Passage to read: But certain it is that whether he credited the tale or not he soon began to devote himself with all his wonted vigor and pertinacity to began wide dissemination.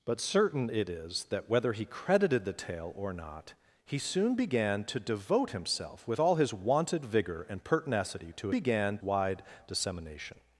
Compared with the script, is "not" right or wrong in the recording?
right